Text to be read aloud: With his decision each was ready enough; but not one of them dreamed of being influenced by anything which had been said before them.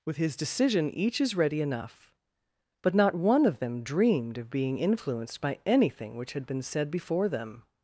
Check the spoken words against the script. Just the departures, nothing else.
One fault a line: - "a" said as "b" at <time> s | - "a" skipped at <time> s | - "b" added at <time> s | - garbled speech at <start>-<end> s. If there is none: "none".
- "was" said as "is" at 1.2 s